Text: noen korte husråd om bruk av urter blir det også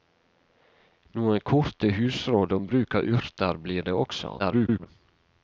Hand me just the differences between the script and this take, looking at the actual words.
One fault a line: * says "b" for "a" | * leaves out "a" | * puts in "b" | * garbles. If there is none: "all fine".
* garbles